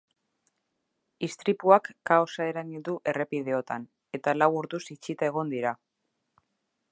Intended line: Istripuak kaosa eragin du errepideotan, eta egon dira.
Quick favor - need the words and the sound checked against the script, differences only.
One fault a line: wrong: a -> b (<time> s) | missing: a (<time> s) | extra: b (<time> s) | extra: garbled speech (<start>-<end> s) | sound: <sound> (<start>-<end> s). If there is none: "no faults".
extra: lau orduz itxita (4.4 s)